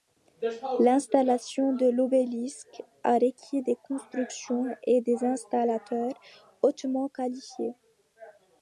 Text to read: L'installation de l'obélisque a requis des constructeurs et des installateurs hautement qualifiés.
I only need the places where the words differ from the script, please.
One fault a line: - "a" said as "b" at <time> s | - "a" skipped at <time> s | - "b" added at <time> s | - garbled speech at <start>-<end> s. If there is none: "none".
none